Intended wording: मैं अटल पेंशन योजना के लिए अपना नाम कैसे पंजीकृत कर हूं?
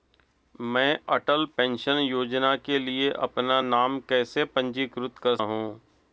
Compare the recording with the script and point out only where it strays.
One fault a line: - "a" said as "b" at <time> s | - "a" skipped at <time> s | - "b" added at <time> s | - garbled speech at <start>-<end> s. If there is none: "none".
none